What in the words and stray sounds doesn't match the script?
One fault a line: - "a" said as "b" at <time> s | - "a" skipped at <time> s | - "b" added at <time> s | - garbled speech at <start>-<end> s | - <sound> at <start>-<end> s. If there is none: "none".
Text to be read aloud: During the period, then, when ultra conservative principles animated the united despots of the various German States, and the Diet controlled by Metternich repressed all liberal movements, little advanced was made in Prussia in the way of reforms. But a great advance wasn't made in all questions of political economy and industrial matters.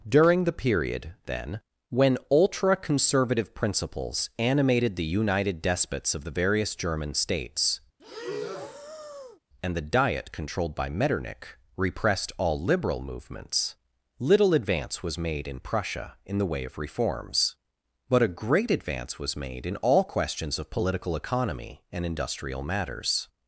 - breath at 8.0-9.4 s
- "advanced" said as "advance" at 14.5 s
- "wasn't" said as "was" at 19.2 s